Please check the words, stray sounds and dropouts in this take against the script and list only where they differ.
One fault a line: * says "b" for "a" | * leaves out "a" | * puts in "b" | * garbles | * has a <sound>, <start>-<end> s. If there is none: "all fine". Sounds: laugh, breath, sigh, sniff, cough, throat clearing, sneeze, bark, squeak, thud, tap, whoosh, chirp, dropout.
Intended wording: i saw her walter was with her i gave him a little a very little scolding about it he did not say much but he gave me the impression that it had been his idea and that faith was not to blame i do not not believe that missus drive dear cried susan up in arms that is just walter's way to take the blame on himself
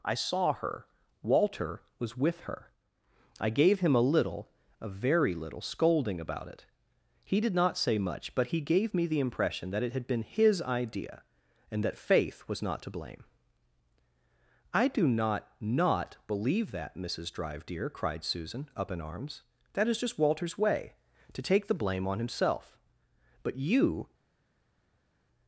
* puts in "but you"